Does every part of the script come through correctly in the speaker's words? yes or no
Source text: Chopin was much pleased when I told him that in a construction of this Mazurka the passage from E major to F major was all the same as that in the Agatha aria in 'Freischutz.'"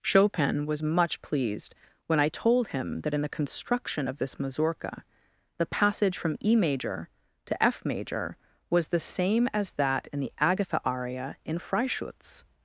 no